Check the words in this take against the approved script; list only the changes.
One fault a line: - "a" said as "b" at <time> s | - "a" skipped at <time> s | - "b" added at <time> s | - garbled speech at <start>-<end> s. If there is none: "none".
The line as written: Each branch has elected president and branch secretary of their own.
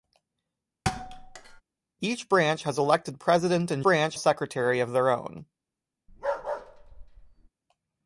none